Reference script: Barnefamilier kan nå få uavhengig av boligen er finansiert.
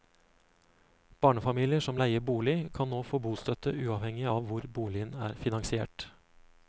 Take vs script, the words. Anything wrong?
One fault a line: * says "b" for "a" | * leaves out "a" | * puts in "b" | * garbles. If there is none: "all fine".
* puts in "som leier bolig"
* puts in "bostøtte"
* puts in "hvor"